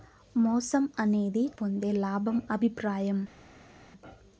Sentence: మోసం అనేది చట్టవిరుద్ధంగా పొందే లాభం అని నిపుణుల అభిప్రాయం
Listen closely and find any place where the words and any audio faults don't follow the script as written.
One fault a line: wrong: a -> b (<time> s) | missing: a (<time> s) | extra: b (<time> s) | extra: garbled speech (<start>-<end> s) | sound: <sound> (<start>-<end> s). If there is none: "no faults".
missing: చట్టవిరుద్ధంగా (1.4 s)
missing: అని నిపుణుల (2.4 s)